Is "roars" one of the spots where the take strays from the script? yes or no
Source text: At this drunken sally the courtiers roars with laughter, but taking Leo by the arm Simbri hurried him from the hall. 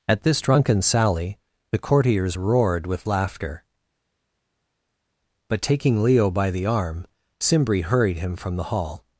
yes